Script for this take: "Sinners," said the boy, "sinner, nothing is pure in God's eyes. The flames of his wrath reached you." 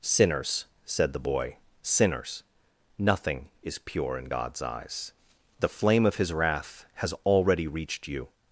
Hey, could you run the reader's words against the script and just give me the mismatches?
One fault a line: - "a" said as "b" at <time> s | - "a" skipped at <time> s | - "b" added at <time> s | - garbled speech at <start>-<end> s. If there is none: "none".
- "sinner" said as "sinners" at 1.8 s
- "flames" said as "flame" at 5.7 s
- "has already" added at 6.9 s